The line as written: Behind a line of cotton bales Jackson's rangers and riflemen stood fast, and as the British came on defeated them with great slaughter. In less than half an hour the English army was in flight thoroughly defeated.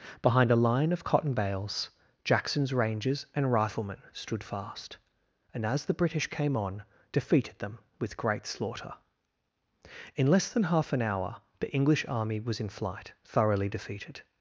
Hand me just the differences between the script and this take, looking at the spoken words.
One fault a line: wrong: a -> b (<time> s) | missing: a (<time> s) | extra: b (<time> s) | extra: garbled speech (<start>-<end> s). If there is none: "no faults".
no faults